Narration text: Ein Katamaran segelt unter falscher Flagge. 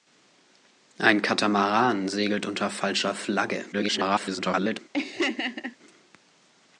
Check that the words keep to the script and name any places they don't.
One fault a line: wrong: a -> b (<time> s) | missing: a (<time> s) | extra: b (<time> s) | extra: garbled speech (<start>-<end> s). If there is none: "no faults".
extra: garbled speech (3.7-4.8 s)